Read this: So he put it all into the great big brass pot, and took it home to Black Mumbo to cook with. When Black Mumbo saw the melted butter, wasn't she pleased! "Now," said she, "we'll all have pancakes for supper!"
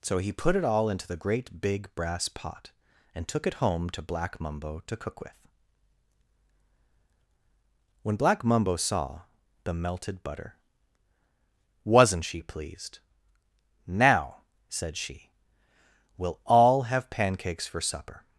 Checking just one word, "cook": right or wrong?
right